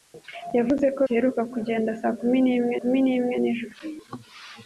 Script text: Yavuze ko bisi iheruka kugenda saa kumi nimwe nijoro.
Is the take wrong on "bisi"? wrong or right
wrong